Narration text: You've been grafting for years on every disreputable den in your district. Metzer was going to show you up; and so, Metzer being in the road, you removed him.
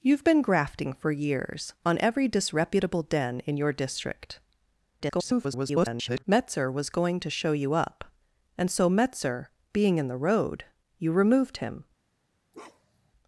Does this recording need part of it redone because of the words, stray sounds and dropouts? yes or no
yes